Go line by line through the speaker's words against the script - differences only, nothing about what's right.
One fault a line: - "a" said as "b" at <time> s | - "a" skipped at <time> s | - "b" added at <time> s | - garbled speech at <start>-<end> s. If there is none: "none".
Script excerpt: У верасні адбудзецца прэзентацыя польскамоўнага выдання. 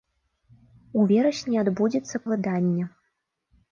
- "прэзентацыя польскамоўнага" skipped at 2.2 s